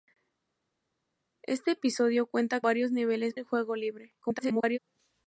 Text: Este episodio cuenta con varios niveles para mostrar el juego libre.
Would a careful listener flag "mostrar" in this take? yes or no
yes